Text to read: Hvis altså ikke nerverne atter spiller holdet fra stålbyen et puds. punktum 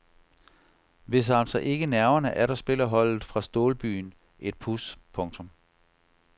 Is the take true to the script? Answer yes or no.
yes